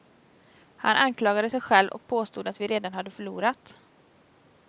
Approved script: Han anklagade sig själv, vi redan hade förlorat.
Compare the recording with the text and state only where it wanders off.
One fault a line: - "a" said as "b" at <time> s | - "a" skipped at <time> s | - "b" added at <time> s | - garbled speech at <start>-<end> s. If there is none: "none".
- "och påstod att" added at 1.9 s